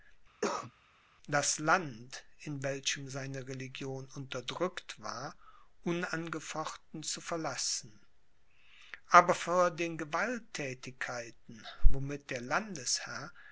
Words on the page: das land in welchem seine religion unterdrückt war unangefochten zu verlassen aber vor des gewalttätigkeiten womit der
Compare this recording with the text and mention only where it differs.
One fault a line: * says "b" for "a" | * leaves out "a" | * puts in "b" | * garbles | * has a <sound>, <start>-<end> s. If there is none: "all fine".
* has a cough, 0.4-0.7 s
* says "den" for "des"